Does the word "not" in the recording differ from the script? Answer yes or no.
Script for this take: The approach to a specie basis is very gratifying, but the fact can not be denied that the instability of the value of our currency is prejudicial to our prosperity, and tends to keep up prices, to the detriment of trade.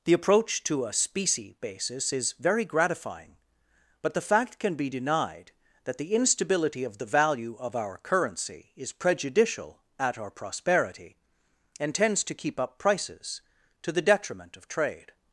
yes